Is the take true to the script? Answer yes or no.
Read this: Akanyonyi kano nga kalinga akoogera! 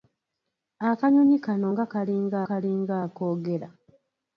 no